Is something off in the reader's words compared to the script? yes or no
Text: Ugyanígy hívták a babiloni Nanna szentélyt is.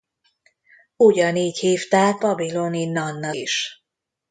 yes